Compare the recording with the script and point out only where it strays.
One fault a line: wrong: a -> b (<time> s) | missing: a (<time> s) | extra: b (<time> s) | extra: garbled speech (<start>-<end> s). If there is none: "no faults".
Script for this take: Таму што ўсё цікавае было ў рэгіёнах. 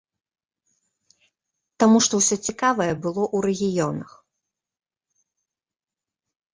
no faults